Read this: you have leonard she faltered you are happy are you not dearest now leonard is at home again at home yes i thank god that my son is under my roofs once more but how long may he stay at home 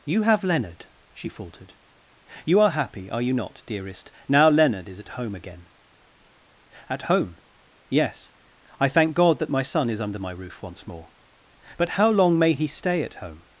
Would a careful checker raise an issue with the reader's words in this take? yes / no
yes